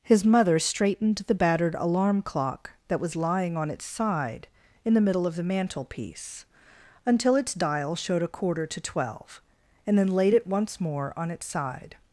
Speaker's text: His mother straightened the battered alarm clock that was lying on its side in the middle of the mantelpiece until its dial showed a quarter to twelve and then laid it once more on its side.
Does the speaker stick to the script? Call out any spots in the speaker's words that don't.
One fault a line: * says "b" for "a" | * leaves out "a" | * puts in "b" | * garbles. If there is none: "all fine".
all fine